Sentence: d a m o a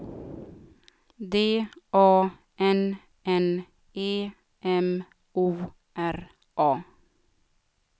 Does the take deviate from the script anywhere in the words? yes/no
yes